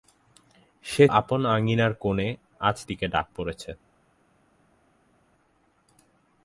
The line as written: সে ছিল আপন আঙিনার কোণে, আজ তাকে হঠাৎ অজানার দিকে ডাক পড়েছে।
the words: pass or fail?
fail